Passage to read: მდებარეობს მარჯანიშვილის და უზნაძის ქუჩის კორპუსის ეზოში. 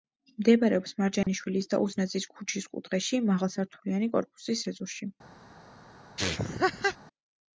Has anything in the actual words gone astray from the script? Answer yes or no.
yes